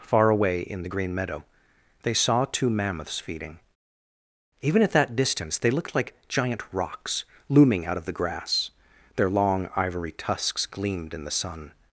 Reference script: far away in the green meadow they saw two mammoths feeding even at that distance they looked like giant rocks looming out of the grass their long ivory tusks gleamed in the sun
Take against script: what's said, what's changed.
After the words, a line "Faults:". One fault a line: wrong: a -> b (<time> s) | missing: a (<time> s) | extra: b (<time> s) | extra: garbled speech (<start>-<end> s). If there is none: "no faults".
far away in the green meadow they saw two mammoths feeding even at that distance they looked like giant rocks looming out of the grass their long ivory tusks gleamed in the sun
Faults:
no faults